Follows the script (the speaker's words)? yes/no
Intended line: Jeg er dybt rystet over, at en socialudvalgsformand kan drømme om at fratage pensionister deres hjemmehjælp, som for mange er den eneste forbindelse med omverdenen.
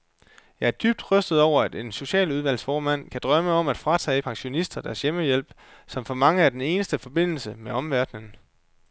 yes